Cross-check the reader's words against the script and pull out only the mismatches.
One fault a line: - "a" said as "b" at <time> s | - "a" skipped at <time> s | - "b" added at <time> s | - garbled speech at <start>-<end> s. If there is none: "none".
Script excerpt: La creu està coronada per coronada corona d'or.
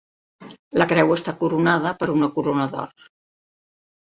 - "coronada" said as "una" at 2.2 s